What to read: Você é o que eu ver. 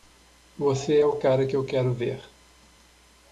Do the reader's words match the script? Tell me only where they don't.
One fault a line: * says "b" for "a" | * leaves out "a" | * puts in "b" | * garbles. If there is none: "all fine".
* puts in "cara"
* puts in "quero"